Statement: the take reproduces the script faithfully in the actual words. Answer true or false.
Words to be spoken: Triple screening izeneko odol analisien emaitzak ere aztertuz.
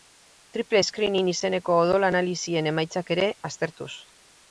true